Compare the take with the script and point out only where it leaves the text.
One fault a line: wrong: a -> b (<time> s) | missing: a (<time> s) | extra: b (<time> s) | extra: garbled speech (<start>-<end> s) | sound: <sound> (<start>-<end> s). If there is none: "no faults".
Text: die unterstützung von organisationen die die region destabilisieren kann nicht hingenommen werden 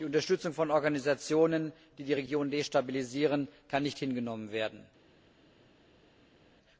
no faults